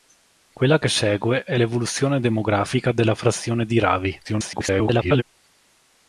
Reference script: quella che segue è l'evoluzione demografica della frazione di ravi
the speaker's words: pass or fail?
fail